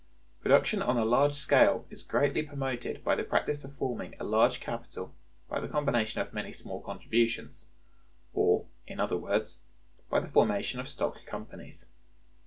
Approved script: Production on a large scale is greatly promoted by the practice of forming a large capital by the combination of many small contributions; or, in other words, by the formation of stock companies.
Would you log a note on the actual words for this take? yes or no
no